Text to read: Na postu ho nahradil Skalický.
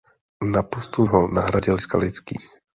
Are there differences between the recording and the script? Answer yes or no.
no